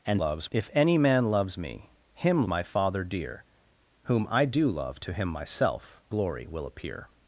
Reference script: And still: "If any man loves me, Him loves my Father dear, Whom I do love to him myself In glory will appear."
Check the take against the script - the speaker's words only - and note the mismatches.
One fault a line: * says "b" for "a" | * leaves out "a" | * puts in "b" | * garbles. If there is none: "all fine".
* says "loves" for "still"
* leaves out "loves"
* leaves out "In"